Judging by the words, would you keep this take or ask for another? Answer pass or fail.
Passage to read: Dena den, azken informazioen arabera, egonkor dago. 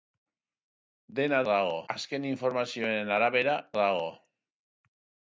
fail